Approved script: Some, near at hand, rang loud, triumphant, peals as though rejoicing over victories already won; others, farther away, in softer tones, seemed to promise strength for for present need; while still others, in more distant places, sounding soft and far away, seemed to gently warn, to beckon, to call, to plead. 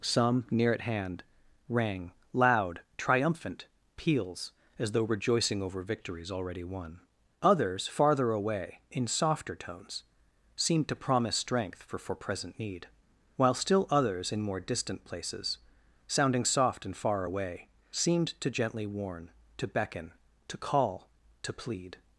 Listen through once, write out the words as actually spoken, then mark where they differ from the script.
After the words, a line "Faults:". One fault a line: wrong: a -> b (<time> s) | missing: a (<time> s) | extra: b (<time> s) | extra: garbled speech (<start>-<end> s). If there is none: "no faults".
Some, near at hand, rang loud, triumphant, peals as though rejoicing over victories already won; others, farther away, in softer tones, seemed to promise strength for for present need; while still others, in more distant places, sounding soft and far away, seemed to gently warn, to beckon, to call, to plead.
Faults:
no faults